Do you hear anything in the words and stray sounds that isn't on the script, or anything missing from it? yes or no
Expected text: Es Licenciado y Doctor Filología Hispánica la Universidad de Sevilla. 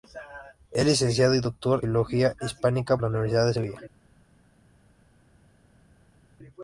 no